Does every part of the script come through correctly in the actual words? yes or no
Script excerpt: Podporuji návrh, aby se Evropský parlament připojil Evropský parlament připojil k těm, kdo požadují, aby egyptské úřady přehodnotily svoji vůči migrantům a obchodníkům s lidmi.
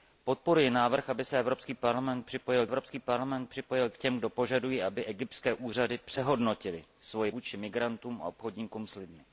yes